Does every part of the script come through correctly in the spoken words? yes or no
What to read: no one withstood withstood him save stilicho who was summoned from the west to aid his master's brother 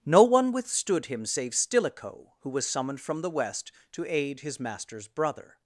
no